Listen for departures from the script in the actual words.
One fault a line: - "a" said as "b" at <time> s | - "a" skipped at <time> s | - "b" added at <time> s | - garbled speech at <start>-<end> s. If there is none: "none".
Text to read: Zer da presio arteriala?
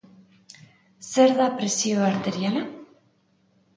none